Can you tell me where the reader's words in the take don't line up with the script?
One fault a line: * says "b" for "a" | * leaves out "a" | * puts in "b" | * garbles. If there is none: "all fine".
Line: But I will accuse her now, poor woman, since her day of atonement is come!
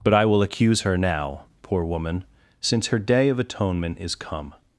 all fine